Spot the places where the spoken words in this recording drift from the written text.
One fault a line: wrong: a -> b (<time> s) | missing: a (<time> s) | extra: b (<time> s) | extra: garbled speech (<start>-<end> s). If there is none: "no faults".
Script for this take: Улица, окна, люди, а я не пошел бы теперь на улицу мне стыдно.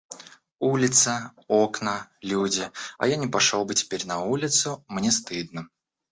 no faults